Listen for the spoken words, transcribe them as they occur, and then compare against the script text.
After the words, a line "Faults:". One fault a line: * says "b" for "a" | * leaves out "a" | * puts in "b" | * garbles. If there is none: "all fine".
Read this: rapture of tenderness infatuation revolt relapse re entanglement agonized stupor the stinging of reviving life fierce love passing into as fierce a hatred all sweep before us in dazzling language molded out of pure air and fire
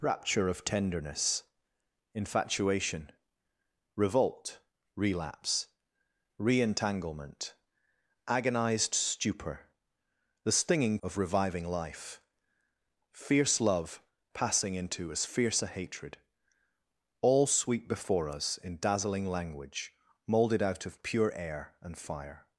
rapture of tenderness infatuation revolt relapse re entanglement agonized stupor the stinging of reviving life fierce love passing into as fierce a hatred all sweep before us in dazzling language molded out of pure air and fire
Faults:
all fine